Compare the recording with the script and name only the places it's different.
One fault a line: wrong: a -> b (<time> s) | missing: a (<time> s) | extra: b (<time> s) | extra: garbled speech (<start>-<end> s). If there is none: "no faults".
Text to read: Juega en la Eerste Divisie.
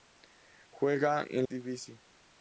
missing: la Eerste (1.4 s)